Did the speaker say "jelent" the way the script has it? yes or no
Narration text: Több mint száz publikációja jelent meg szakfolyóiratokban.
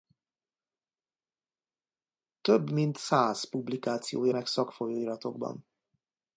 no